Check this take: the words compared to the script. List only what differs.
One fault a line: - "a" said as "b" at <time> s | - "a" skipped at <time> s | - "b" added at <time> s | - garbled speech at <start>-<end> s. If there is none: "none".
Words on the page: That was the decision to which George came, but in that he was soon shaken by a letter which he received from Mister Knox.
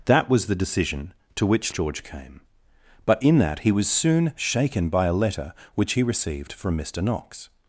none